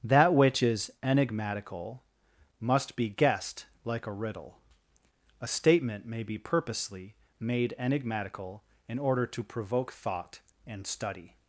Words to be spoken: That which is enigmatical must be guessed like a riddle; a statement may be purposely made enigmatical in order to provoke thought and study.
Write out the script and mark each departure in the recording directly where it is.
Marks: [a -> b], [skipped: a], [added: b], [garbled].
That which is enigmatical must be guessed like a riddle; a statement may be purposely made enigmatical in order to provoke thought and study.